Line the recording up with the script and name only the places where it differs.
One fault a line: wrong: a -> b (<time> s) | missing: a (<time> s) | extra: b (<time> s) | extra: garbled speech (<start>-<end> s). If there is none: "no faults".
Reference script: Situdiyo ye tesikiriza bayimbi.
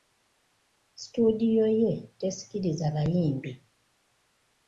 no faults